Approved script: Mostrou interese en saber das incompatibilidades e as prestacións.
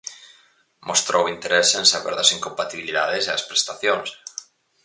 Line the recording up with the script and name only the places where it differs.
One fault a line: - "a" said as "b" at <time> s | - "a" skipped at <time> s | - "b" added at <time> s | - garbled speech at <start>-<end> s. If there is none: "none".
none